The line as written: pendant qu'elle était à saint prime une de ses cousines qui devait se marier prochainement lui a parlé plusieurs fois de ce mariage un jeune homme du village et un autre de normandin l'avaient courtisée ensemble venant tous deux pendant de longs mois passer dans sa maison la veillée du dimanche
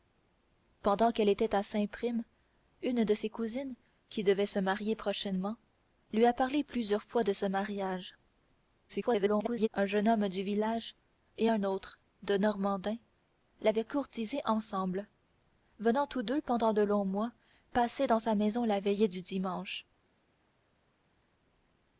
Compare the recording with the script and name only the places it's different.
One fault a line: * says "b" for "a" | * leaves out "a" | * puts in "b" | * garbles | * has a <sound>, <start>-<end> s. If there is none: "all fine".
* garbles